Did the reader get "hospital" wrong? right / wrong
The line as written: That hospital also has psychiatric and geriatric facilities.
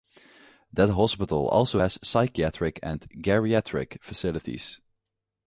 right